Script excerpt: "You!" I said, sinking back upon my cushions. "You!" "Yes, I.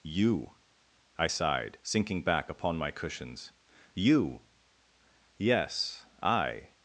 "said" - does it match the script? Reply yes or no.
no